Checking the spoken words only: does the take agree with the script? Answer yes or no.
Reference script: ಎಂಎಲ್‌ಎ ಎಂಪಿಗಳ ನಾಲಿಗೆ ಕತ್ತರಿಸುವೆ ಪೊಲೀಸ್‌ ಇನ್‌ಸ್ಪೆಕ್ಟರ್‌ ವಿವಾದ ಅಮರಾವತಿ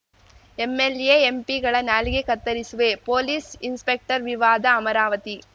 yes